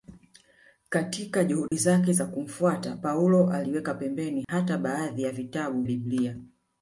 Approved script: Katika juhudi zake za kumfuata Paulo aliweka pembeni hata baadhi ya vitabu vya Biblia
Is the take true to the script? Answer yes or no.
no